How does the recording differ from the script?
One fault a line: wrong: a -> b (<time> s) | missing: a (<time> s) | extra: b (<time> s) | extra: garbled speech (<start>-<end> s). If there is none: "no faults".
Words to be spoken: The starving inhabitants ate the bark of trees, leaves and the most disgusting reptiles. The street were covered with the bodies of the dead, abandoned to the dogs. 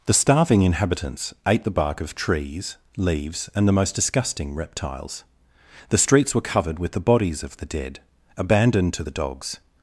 wrong: street -> streets (6.0 s)